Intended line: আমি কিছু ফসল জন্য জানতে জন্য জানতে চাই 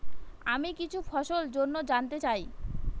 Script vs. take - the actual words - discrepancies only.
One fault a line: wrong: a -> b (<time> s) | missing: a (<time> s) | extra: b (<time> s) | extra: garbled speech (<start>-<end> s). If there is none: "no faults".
missing: জন্য জানতে (2.2 s)